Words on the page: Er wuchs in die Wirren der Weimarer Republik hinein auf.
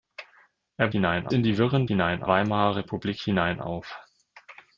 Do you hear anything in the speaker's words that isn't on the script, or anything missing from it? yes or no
yes